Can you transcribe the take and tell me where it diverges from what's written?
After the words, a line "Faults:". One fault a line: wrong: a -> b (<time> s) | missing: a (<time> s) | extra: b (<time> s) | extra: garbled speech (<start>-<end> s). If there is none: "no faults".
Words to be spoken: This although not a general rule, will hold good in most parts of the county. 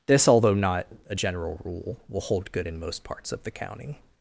This although not a general rule, will hold good in most parts of the county.
Faults:
no faults